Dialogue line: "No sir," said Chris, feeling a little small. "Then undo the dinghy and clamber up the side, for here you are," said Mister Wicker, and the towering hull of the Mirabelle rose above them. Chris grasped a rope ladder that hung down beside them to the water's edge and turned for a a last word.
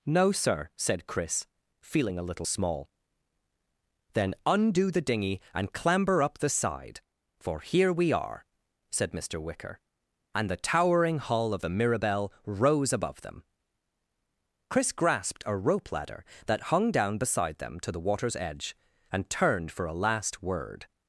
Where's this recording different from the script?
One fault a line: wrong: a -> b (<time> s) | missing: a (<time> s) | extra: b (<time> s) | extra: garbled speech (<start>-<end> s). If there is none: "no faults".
wrong: you -> we (7.9 s)
missing: a (20.0 s)